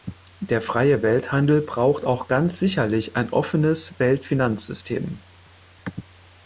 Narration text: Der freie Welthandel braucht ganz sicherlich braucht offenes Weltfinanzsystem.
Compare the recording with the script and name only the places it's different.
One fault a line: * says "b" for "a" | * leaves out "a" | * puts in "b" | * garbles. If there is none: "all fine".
* puts in "auch"
* says "ein" for "braucht"